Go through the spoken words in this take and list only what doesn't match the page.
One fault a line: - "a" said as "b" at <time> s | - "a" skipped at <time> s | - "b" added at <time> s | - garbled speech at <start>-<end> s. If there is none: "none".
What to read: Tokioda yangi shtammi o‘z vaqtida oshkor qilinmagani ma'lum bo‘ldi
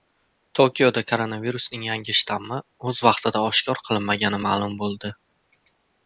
- "koronavirusning" added at 1.1 s